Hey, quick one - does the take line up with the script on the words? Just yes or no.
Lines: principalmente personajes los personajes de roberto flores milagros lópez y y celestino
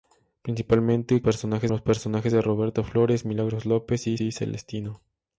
yes